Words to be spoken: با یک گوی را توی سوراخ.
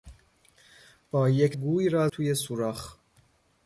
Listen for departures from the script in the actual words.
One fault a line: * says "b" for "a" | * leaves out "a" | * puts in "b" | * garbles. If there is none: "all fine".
all fine